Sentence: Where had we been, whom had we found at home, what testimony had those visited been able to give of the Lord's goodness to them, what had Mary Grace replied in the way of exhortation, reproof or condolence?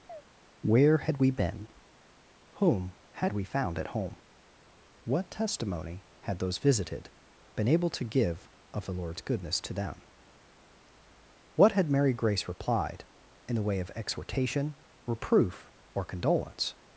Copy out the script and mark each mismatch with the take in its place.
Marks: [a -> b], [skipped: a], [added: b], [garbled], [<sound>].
[chirp] Where had we been, whom had we found at home, what testimony had those visited been able to give of the Lord's goodness to them, what had Mary Grace replied in the way of exhortation, reproof or condolence?